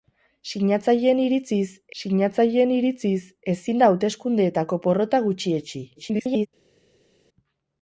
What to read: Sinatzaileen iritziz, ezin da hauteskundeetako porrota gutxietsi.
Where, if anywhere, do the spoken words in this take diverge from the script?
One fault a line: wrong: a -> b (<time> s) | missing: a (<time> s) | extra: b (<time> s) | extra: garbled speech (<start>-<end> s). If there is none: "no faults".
extra: sinatzaileen iritziz (2.0 s)
extra: garbled speech (6.0-6.5 s)